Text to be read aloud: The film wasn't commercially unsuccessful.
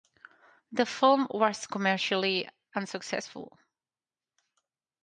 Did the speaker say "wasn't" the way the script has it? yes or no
no